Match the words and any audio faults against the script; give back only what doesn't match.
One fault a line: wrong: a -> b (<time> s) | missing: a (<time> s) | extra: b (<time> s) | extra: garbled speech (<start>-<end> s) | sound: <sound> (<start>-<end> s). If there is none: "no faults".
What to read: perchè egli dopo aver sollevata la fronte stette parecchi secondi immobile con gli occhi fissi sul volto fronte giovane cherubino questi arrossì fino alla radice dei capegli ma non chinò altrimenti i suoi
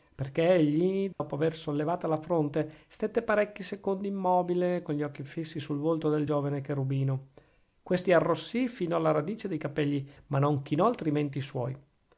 sound: dropout (1.1-1.2 s)
wrong: fronte -> del (6.1 s)